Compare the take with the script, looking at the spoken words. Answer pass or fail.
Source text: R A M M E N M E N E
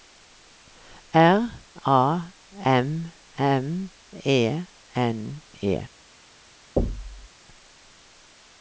fail